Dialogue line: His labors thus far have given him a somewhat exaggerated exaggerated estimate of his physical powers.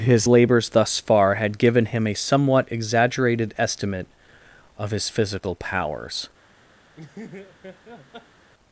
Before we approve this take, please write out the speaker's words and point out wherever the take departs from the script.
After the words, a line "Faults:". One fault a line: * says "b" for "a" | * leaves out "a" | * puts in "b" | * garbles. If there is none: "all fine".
His labors thus far had given him a somewhat exaggerated estimate of his physical powers.
Faults:
* says "had" for "have"
* leaves out "exaggerated"